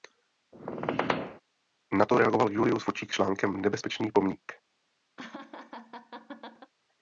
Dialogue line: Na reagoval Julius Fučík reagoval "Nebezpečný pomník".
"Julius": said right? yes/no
yes